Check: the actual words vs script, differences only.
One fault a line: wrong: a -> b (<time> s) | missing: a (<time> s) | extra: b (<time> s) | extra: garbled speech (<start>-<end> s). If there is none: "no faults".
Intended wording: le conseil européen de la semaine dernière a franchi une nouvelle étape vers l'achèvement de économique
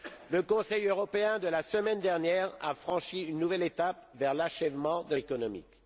no faults